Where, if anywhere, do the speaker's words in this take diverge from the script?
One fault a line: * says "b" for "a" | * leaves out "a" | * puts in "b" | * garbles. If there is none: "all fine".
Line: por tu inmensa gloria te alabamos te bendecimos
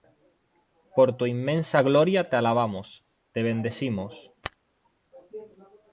all fine